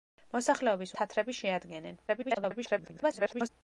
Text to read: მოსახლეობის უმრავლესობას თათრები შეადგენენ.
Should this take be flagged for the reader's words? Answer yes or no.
yes